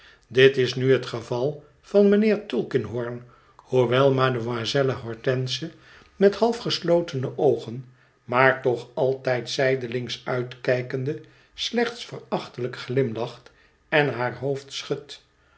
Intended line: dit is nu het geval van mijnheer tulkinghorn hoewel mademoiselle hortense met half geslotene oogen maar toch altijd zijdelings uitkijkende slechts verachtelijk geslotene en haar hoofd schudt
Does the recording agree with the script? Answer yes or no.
no